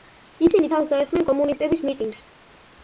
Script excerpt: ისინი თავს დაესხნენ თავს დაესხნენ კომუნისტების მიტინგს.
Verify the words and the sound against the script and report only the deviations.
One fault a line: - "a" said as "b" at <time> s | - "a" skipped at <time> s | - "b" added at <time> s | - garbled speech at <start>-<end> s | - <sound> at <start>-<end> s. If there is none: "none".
- "თავს დაესხნენ" skipped at 1.3 s